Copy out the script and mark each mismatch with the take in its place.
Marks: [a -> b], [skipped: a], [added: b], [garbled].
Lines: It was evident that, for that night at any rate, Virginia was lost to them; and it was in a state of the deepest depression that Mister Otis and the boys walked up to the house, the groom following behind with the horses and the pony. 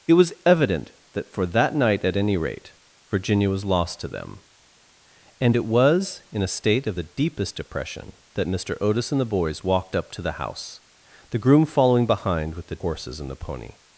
It was evident that, for that night at any rate, Virginia was lost to them; and it was in a state of the deepest depression that Mister Otis and the boys walked up to the house, the groom following behind with the horses and the pony.